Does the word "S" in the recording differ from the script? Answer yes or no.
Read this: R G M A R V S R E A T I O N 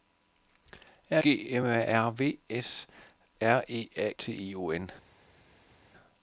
no